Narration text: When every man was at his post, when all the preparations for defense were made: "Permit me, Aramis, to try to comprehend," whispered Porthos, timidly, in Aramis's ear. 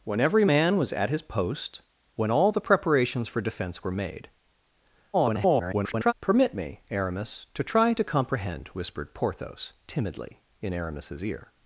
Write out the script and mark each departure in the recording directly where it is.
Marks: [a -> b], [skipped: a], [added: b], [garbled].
When every man was at his post, when all the preparations for defense were made: [garbled] "Permit me, Aramis, to try to comprehend," whispered Porthos, timidly, in Aramis's ear.